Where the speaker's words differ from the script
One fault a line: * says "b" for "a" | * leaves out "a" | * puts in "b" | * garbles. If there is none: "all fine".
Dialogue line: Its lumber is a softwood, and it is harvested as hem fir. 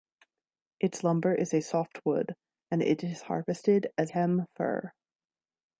all fine